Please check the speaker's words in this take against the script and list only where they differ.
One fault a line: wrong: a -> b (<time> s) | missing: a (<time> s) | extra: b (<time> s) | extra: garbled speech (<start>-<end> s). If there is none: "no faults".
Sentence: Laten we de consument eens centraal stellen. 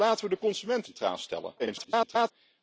missing: eens (0.9 s)
extra: garbled speech (1.6-2.3 s)